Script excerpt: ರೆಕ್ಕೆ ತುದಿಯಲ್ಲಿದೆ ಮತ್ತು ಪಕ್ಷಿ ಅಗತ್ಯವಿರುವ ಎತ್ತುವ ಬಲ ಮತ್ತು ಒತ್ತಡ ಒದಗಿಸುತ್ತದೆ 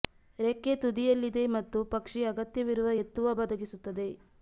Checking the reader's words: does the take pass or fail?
fail